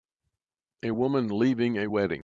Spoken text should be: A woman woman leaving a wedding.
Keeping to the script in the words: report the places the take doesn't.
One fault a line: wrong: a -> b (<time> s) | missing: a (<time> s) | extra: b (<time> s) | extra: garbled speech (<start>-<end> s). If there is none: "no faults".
missing: woman (1.3 s)